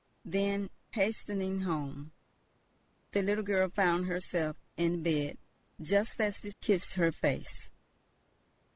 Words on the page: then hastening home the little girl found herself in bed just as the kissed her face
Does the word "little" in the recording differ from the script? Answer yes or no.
no